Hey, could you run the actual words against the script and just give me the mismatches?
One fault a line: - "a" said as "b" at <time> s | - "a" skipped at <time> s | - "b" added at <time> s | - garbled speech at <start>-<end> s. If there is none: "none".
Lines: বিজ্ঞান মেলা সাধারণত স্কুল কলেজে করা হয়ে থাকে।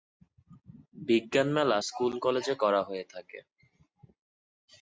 - "সাধারণত" skipped at 1.8 s